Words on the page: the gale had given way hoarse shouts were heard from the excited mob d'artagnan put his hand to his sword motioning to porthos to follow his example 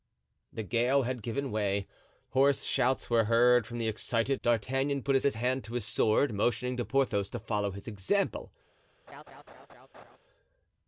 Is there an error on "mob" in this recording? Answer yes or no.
yes